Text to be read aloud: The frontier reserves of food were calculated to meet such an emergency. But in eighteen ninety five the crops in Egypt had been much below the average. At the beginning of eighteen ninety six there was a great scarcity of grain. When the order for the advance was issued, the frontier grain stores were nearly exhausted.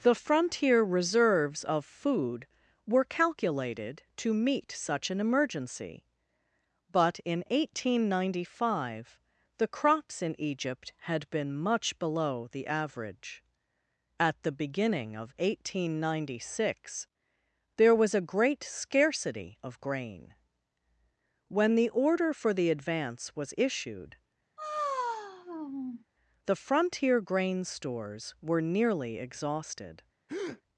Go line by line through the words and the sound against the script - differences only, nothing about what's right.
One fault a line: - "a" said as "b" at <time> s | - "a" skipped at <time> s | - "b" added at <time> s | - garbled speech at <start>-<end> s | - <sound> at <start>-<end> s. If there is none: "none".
- sigh at 24.6-26.0 s
- breath at 30.3-30.6 s